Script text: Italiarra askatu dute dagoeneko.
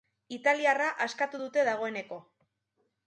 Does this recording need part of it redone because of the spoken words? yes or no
no